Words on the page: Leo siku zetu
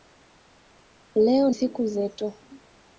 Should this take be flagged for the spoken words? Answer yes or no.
no